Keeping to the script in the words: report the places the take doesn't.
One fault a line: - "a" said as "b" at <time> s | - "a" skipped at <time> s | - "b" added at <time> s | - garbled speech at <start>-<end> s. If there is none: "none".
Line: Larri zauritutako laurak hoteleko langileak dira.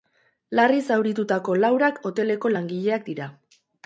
none